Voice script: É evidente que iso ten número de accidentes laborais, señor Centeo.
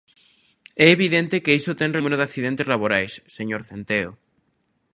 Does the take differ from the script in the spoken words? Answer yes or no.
no